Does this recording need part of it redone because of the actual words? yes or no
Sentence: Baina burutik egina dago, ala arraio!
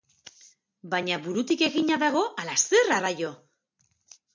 yes